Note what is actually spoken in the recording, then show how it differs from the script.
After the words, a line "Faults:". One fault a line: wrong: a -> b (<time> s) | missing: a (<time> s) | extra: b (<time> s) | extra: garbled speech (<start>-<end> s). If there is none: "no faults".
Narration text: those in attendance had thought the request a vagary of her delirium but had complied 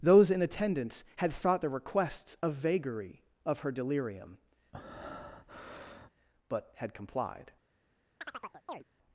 those in attendance had thought the requests a vagary of her delirium but had complied
Faults:
wrong: request -> requests (1.7 s)